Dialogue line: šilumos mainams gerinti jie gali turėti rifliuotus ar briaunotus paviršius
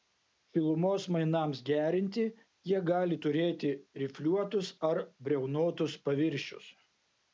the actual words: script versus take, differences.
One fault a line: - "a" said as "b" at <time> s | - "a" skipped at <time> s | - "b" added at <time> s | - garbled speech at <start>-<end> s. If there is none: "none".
none